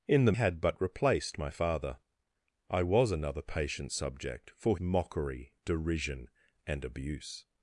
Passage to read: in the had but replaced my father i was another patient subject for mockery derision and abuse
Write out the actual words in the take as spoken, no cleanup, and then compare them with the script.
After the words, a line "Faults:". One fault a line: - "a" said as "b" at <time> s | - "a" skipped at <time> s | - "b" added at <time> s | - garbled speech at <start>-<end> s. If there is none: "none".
in the had but replaced my father i was another patient subject for mockery derision and abuse
Faults:
none